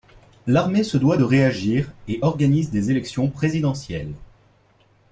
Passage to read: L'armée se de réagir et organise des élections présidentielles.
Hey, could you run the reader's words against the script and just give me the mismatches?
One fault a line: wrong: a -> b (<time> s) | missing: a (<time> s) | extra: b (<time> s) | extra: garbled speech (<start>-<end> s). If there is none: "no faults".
extra: doit (1.0 s)